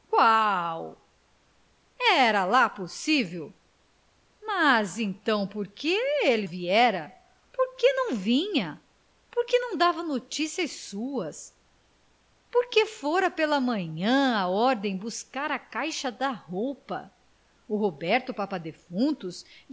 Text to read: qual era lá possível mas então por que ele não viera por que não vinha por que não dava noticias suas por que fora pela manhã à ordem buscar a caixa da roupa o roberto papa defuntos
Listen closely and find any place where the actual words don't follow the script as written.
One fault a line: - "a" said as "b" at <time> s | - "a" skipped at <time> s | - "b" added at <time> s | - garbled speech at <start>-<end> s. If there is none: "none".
- "não" skipped at 6.5 s